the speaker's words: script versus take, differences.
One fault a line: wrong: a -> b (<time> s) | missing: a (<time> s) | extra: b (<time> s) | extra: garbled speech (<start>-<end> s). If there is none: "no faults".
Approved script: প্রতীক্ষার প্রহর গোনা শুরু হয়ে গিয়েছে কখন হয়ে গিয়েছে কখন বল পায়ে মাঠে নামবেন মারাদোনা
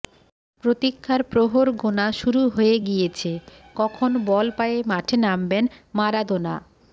missing: হয়ে গিয়েছে কখন (4.1 s)